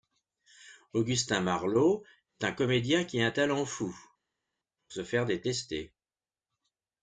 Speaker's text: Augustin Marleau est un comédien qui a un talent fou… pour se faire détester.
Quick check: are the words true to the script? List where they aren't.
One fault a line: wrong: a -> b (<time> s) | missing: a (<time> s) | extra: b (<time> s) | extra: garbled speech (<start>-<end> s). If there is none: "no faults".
no faults